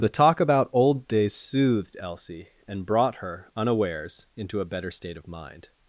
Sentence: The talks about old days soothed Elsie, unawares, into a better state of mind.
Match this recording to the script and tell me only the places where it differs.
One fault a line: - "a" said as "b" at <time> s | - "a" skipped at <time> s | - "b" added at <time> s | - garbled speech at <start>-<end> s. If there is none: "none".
- "talks" said as "talk" at 0.1 s
- "and brought her" added at 2.7 s